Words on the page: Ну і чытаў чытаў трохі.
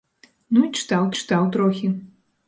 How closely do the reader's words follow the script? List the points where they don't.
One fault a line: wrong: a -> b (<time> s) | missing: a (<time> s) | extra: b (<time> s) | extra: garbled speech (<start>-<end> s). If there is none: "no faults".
no faults